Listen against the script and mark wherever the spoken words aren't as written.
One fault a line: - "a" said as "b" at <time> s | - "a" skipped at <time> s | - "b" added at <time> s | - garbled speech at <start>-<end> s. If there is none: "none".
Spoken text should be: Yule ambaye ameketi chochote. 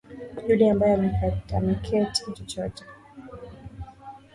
none